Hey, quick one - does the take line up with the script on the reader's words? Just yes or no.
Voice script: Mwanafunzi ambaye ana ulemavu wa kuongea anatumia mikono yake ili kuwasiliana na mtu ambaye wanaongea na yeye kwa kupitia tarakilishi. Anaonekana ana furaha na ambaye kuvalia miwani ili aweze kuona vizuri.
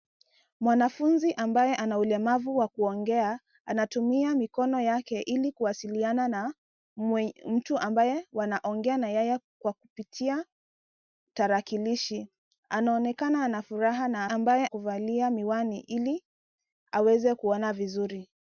yes